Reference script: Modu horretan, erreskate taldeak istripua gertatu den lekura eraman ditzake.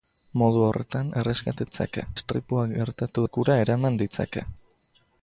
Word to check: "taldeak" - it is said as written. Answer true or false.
false